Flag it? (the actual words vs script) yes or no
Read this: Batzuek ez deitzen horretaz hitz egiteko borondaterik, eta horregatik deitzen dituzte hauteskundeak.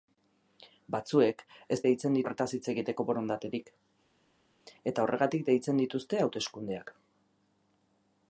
no